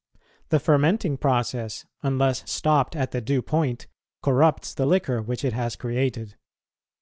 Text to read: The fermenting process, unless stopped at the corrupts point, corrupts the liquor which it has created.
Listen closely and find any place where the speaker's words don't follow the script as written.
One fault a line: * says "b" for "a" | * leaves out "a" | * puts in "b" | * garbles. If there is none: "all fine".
* says "due" for "corrupts"